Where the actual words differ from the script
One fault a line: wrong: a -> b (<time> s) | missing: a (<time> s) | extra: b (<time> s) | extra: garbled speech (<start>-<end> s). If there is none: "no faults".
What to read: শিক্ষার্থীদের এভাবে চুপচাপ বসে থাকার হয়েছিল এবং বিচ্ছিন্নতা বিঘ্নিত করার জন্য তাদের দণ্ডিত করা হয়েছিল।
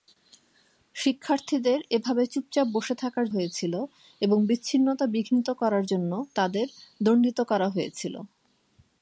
no faults